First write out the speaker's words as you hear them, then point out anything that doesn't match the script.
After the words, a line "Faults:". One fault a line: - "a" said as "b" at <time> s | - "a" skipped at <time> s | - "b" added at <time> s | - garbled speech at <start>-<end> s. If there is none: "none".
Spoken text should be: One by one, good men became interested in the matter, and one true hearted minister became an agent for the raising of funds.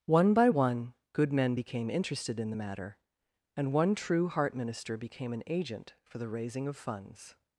One by one, good men became interested in the matter, and one true heart minister became an agent for the raising of funds.
Faults:
- "hearted" said as "heart" at 4.3 s